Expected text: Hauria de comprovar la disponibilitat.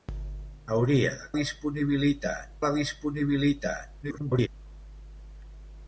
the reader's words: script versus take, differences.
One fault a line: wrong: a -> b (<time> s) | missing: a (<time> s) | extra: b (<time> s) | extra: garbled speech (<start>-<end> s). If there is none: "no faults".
wrong: comprovar -> disponibilitat (1.4 s)
extra: garbled speech (4.0-4.5 s)